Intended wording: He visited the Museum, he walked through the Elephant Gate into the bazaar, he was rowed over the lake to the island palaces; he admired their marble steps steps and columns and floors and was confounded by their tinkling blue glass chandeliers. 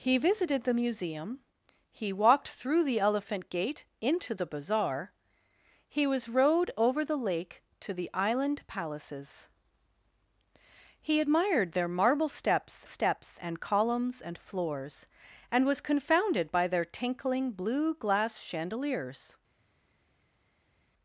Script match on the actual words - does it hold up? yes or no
yes